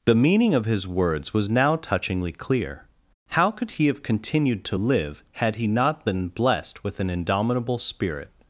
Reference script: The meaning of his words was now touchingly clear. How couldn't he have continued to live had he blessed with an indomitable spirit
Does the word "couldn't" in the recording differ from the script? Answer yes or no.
yes